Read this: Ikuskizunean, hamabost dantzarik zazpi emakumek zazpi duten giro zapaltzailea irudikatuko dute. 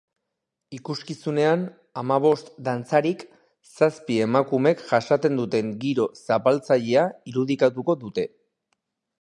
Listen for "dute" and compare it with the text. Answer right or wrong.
right